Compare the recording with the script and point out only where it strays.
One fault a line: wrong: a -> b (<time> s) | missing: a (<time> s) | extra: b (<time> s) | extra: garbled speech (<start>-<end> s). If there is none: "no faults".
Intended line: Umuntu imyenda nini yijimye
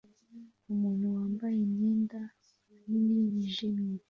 extra: wambaye (1.1 s)